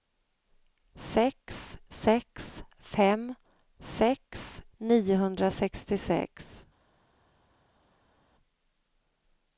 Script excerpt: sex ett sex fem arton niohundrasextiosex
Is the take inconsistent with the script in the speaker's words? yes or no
yes